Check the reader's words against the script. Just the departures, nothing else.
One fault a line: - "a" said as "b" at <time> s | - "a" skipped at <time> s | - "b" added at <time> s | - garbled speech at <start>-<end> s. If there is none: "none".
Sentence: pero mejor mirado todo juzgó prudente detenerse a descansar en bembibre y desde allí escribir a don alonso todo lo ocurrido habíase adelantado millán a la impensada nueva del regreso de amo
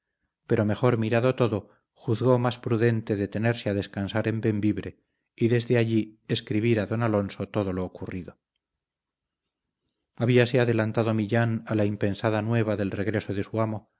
- "más" added at 2.4 s
- "su" added at 13.4 s